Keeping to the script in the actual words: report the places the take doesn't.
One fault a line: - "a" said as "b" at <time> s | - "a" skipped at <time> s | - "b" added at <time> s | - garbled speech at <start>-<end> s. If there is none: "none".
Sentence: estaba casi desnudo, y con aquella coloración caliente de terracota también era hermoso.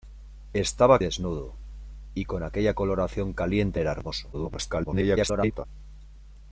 - "casi" skipped at 1.0 s
- "de terracota también" skipped at 3.8 s
- garbled speech at 4.3-5.7 s